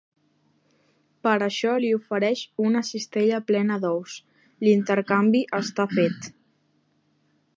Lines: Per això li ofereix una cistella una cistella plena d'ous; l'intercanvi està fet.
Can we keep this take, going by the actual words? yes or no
no